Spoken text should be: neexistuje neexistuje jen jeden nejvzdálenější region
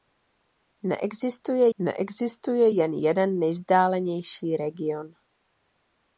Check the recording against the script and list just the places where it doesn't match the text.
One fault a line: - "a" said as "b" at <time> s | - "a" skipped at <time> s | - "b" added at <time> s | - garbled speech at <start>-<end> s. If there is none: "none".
none